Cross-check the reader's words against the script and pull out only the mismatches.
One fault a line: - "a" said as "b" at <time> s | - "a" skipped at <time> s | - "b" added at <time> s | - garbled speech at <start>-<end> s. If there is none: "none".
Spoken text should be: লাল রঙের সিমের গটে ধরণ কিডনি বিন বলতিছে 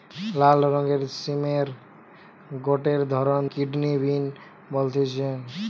none